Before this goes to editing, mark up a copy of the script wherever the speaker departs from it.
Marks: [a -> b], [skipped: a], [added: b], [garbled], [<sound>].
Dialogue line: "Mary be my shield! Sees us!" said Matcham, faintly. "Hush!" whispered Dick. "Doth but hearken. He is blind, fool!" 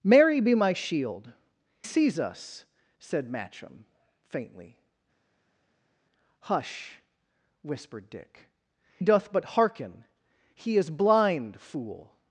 "Mary be my shield! Sees us!" said Matcham, faintly. "Hush!" whispered Dick. "Doth but hearken. He is blind, fool!"